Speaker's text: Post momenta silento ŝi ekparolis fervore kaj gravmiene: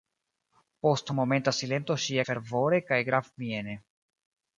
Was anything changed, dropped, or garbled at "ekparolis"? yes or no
yes